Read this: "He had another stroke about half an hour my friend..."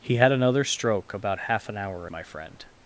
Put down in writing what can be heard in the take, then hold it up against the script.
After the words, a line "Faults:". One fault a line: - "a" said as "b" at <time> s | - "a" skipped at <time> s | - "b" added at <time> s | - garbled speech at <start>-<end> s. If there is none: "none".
"He had another stroke about half an hour my friend..."
Faults:
none